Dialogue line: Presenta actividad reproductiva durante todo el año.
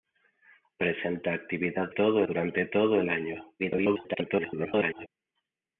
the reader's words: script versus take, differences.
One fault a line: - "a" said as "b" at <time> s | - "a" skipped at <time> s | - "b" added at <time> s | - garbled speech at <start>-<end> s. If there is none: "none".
- "reproductiva" said as "todo" at 1.9 s
- garbled speech at 3.6-5.1 s